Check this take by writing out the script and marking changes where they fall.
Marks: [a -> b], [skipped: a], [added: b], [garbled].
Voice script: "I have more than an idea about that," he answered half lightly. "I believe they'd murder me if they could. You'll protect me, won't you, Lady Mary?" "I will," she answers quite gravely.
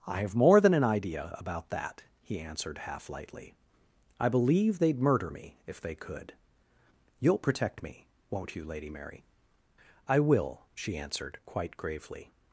"I have more than an idea about that," he answered half lightly. "I believe they'd murder me if they could. You'll protect me, won't you, Lady Mary?" "I will," she [answers -> answered] quite gravely.